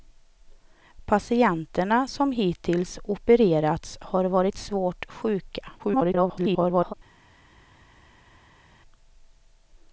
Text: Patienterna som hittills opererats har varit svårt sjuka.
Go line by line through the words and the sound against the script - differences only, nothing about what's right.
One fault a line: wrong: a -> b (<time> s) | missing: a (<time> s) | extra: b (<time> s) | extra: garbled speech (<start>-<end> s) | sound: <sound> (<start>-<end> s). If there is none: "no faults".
extra: garbled speech (5.8-6.9 s)